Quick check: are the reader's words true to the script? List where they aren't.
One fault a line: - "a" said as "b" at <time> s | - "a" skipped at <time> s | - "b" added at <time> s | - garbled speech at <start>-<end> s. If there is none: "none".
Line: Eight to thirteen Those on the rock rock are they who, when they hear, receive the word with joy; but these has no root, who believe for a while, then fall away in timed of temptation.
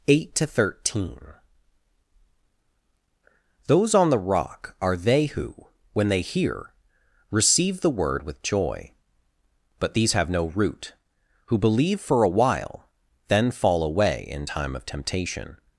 - "rock" skipped at 4.8 s
- "has" said as "have" at 10.1 s
- "timed" said as "time" at 14.4 s